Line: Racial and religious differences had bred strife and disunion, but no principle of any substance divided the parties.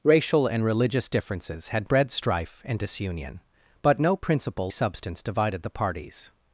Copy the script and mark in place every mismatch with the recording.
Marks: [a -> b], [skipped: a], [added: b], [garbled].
Racial and religious differences had bred strife and disunion, but no principle [skipped: of any] substance divided the parties.